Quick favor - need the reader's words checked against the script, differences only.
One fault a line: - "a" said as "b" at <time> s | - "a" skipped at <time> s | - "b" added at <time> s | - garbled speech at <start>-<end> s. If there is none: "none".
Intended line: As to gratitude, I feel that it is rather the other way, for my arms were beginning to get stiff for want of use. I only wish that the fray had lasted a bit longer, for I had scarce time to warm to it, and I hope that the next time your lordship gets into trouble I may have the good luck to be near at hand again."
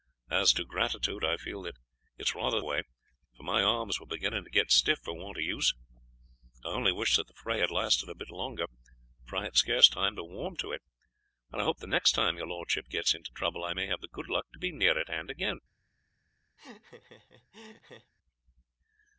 - "the other" skipped at 2.6 s
- "that" skipped at 11.8 s